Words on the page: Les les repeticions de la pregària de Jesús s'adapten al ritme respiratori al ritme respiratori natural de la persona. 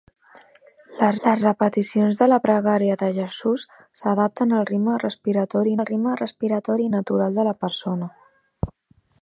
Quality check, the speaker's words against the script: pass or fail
pass